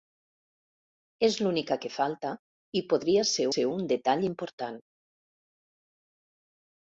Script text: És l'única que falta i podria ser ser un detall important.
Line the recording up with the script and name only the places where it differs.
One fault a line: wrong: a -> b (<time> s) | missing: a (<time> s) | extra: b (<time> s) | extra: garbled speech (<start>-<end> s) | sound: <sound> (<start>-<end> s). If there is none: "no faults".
no faults